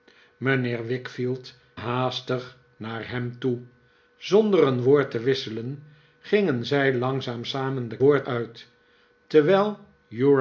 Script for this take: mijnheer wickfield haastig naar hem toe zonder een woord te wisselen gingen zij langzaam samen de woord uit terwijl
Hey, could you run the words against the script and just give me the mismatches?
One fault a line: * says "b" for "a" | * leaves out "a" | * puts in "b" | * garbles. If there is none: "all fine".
all fine